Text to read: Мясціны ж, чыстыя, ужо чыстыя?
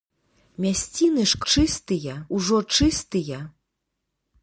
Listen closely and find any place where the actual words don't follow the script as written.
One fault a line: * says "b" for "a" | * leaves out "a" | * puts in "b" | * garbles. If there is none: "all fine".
all fine